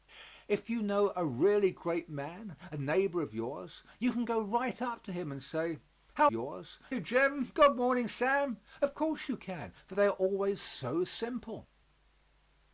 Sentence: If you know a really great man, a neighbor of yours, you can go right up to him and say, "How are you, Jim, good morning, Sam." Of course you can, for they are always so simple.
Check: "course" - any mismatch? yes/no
no